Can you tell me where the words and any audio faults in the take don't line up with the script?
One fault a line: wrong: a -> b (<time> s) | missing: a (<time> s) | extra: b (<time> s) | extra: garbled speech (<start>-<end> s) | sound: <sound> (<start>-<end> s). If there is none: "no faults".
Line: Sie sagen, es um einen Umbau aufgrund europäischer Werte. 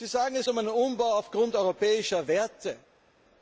no faults